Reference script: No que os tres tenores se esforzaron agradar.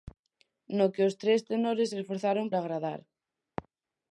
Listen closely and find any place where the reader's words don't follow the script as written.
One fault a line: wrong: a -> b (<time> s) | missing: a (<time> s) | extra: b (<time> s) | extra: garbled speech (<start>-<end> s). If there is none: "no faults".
no faults